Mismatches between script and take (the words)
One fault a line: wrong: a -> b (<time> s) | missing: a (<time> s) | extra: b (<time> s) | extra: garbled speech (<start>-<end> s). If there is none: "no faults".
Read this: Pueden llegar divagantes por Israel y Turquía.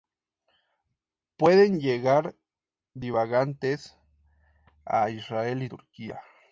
wrong: por -> a (4.8 s)